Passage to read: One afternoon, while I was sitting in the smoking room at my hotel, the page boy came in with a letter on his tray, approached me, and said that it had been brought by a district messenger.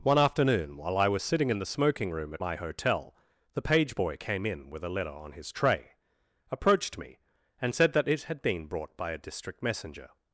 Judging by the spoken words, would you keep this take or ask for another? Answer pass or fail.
pass